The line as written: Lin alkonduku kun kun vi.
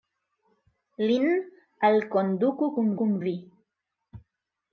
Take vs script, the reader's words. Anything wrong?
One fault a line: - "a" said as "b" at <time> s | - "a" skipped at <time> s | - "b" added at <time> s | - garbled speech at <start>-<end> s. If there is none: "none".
none